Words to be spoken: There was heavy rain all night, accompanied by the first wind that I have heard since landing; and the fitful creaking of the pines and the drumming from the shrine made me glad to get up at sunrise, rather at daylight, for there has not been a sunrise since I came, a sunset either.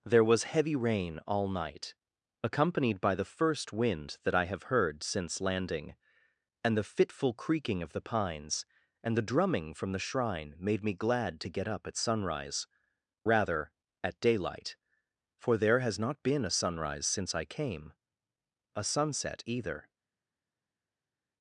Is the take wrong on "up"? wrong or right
right